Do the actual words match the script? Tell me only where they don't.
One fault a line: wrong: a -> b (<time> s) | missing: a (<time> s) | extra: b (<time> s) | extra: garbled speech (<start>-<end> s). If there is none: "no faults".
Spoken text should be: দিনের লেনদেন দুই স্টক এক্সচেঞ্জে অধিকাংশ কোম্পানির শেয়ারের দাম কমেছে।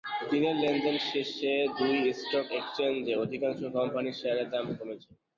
extra: শেষে (1.1 s)